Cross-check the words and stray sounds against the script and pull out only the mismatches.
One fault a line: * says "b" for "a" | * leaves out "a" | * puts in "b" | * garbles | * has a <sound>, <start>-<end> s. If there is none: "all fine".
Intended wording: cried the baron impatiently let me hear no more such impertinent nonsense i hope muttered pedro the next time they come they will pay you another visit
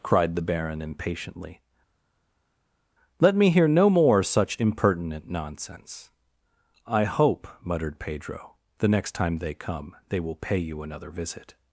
all fine